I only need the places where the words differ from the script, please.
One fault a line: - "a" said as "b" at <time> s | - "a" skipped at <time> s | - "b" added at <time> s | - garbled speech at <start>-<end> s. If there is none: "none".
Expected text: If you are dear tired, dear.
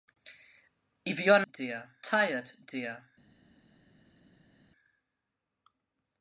none